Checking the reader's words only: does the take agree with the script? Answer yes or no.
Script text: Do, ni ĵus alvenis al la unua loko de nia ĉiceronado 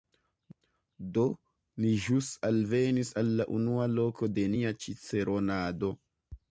yes